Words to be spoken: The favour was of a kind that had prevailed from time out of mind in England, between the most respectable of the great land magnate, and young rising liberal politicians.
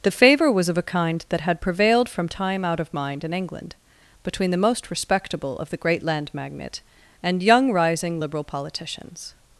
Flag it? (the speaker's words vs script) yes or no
no